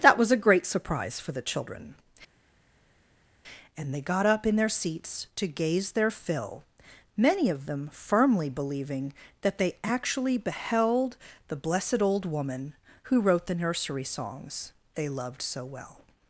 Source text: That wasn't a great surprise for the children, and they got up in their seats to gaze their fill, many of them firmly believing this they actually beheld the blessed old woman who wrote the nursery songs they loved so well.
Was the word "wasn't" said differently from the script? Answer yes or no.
yes